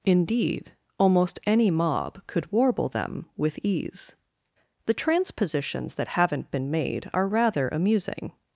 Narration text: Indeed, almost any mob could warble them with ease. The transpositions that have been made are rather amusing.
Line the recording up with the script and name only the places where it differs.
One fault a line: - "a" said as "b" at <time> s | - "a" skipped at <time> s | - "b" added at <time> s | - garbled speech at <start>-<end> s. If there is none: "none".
- "have" said as "haven't" at 6.1 s